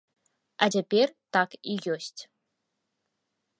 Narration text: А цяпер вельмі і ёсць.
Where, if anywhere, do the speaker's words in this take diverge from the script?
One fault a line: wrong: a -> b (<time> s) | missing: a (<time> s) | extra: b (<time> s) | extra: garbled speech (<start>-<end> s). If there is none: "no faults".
wrong: вельмі -> так (1.4 s)